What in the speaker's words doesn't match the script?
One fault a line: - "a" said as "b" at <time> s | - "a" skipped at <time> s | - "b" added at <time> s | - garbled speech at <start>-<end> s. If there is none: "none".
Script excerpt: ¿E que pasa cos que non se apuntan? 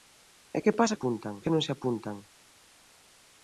- "cos" said as "apuntan" at 0.9 s